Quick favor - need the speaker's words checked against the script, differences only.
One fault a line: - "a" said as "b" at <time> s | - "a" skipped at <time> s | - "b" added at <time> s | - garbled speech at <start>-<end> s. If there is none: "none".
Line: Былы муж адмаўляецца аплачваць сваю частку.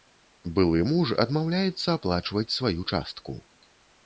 none